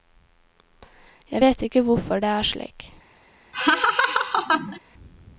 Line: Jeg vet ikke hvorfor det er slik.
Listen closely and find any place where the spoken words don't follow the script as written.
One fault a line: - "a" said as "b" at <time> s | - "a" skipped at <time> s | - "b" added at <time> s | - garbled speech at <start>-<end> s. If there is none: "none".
none